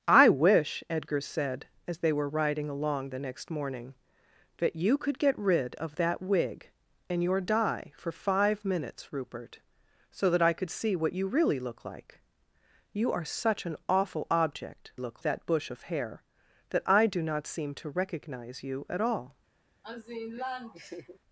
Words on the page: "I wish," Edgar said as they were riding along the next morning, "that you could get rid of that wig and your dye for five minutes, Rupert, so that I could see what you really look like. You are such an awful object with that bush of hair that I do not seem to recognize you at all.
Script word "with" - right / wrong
wrong